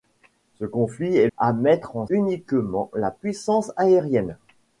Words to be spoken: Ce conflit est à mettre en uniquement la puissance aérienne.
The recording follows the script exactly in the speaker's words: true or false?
true